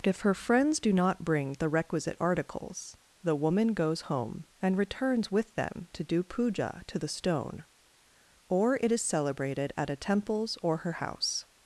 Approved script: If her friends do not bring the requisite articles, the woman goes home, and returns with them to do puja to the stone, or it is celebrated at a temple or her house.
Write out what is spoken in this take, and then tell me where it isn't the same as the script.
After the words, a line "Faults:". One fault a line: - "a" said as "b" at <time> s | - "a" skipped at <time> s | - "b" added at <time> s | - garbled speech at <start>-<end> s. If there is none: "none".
If her friends do not bring the requisite articles, the woman goes home, and returns with them to do puja to the stone, or it is celebrated at a temples or her house.
Faults:
- "temple" said as "temples" at 9.9 s